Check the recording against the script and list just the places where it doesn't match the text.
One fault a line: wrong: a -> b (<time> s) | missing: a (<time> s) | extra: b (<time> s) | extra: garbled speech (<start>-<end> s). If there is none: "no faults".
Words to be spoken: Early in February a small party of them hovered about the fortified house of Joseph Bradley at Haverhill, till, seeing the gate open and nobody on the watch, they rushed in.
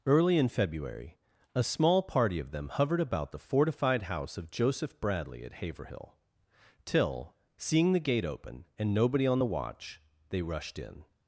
no faults